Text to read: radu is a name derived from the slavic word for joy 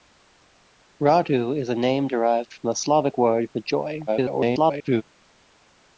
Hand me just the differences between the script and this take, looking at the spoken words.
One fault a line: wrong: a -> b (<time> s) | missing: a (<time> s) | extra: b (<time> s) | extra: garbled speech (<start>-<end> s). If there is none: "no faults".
extra: garbled speech (4.1-5.0 s)